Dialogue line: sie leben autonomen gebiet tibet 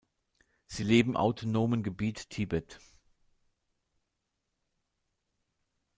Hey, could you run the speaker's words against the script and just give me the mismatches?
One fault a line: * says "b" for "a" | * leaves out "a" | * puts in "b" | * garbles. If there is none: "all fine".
all fine